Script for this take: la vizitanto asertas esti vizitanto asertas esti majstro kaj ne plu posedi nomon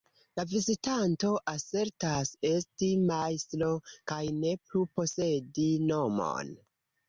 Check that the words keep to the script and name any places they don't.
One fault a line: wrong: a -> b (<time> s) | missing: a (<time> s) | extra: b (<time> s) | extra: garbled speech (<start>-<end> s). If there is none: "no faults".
missing: vizitanto asertas esti (2.9 s)